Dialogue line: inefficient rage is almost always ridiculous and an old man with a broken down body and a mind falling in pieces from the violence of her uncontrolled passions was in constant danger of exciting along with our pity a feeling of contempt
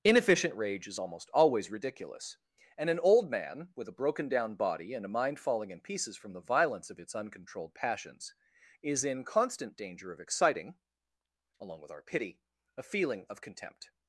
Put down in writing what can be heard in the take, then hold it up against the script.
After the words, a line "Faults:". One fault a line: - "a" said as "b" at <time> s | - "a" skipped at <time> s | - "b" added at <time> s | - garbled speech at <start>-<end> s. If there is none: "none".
inefficient rage is almost always ridiculous and an old man with a broken down body and a mind falling in pieces from the violence of its uncontrolled passions is in constant danger of exciting along with our pity a feeling of contempt
Faults:
- "her" said as "its" at 7.0 s
- "was" said as "is" at 8.8 s